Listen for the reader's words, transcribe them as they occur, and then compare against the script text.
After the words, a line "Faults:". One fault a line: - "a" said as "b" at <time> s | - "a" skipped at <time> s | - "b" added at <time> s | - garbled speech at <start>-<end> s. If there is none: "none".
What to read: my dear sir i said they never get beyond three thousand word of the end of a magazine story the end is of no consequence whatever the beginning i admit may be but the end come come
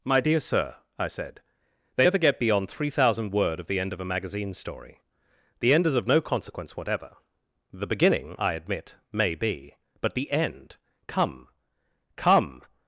my dear sir i said they never get beyond three thousand word of the end of a magazine story the end is of no consequence whatever the beginning i admit may be but the end come come
Faults:
none